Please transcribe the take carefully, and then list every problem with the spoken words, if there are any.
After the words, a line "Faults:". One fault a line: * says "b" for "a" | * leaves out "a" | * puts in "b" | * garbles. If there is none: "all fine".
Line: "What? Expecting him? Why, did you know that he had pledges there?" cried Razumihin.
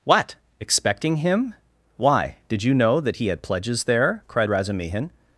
"What? Expecting him? Why, did you know that he had pledges there?" cried Razumihin.
Faults:
all fine